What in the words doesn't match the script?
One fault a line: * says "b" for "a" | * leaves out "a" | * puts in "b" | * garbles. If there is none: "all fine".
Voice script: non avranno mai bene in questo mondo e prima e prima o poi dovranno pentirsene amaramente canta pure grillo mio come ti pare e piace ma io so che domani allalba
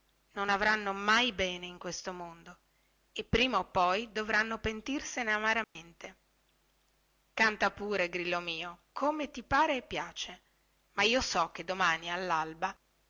* leaves out "e prima"